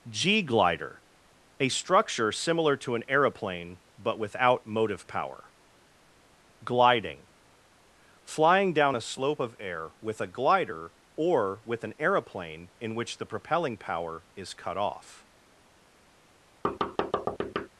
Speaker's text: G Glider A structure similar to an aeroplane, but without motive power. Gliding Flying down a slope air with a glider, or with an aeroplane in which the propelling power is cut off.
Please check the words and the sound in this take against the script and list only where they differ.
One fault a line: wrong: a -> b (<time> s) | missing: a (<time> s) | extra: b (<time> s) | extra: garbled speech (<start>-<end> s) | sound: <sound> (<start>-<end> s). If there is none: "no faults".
extra: of (9.4 s)
sound: thud (16.6-17.7 s)